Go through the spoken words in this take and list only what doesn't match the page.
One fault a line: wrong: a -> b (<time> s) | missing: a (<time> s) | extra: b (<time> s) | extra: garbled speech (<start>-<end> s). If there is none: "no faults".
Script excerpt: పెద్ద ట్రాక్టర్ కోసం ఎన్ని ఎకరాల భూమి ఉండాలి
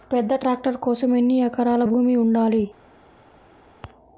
no faults